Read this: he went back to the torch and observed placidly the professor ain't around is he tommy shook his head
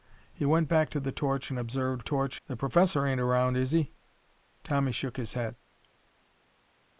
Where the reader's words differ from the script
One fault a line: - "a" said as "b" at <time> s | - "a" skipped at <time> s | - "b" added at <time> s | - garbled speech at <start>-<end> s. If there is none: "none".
- "placidly" said as "torch" at 2.0 s